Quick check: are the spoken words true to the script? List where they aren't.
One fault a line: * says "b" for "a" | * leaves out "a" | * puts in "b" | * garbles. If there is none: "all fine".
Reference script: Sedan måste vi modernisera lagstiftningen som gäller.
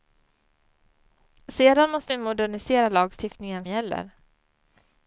* leaves out "som"